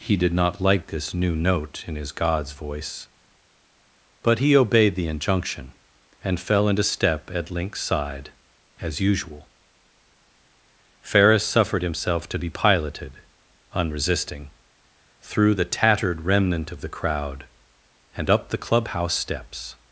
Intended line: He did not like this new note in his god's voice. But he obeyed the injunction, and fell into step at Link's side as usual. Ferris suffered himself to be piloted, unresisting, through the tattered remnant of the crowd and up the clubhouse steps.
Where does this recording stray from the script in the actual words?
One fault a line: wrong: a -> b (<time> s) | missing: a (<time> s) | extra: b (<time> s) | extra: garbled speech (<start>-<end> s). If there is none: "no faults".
no faults